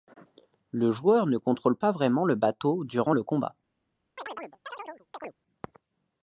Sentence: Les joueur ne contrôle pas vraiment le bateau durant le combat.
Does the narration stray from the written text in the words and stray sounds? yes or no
yes